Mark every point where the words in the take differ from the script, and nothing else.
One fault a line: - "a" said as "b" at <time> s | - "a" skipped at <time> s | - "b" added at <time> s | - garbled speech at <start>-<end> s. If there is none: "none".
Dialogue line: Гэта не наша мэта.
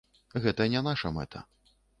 none